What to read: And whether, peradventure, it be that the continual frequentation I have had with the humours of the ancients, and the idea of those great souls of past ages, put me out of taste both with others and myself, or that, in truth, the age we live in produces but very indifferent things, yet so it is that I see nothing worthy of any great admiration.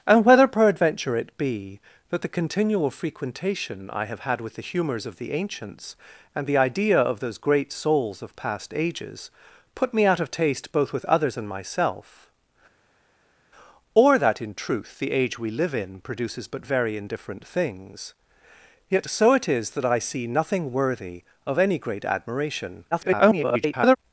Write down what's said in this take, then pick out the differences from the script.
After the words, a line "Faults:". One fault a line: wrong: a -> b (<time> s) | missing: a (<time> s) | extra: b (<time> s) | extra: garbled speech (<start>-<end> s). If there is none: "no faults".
And whether, peradventure, it be that the continual frequentation I have had with the humours of the ancients, and the idea of those great souls of past ages, put me out of taste both with others and myself, or that, in truth, the age we live in produces but very indifferent things, yet so it is that I see nothing worthy of any great admiration. [garbled]
Faults:
extra: garbled speech (22.9-24.0 s)